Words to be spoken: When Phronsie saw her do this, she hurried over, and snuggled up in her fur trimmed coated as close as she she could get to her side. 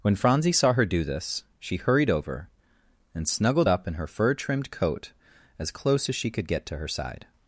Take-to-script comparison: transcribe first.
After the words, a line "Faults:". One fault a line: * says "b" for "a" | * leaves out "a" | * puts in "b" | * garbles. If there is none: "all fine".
When Phronsie saw her do this, she hurried over, and snuggled up in her fur trimmed coat as close as she could get to her side.
Faults:
* says "coat" for "coated"
* leaves out "she"